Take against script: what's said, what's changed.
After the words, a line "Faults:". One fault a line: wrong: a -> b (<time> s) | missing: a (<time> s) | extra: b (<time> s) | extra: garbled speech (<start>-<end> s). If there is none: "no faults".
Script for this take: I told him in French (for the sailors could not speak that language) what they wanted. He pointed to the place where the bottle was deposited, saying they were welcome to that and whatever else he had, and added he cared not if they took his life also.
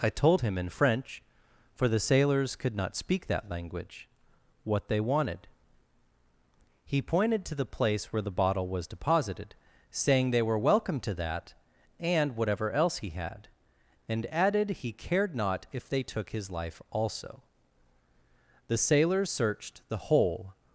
I told him in French (for the sailors could not speak that language) what they wanted. He pointed to the place where the bottle was deposited, saying they were welcome to that and whatever else he had, and added he cared not if they took his life also. The sailors searched the whole
Faults:
extra: The sailors searched the whole (18.7 s)